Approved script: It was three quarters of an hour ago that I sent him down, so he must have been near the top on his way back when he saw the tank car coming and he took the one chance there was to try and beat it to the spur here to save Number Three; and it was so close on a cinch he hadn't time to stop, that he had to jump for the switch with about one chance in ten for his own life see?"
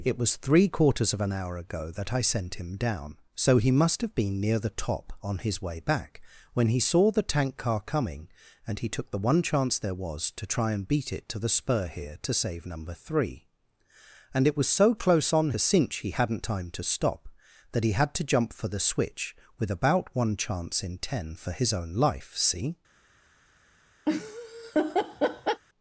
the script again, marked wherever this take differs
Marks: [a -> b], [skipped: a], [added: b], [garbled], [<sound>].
It was three quarters of an hour ago that I sent him down, so he must have been near the top on his way back when he saw the tank car coming and he took the one chance there was to try and beat it to the spur here to save Number Three; and it was so close on a cinch he hadn't time to stop, that he had to jump for the switch with about one chance in ten for his own life see?" [laugh]